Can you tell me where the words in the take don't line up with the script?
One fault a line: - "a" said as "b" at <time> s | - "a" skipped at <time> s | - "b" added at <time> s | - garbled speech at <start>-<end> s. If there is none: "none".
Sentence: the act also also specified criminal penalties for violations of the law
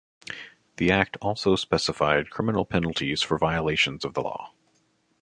- "also" skipped at 1.6 s